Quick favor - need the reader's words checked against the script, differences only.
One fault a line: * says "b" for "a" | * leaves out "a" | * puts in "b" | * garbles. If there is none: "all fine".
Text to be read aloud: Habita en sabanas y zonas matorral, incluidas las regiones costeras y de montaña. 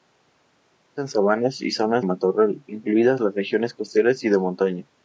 all fine